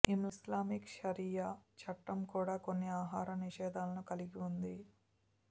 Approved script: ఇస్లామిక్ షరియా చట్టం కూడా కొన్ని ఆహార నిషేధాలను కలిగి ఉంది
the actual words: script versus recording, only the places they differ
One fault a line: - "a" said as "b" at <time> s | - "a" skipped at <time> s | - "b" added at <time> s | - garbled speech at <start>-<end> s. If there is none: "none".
none